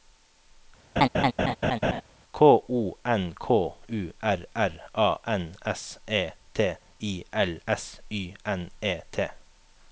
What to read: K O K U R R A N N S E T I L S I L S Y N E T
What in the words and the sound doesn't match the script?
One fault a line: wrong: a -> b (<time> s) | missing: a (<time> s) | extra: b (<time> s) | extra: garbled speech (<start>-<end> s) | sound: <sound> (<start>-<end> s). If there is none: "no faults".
sound: laugh (1.0-2.0 s)
extra: N (3.0 s)
missing: N (5.6 s)
missing: I L S (8.0 s)